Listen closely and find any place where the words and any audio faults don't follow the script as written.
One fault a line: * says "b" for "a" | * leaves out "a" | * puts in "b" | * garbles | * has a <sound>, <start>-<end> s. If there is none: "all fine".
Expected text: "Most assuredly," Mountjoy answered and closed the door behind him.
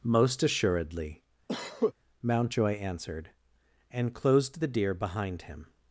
* has a cough, 1.5-1.9 s
* says "deer" for "door"